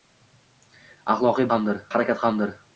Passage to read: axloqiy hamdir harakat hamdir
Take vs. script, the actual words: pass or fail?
pass